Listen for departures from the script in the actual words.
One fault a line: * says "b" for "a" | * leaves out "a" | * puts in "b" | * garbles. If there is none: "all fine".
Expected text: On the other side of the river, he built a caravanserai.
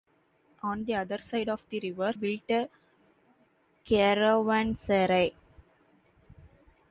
* leaves out "he"